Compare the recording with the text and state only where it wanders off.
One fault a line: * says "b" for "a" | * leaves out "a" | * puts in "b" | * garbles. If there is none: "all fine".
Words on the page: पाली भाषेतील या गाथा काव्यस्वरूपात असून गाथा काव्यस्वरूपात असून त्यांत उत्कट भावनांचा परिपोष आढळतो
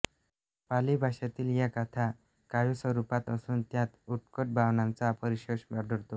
* leaves out "गाथा काव्यस्वरूपात असून"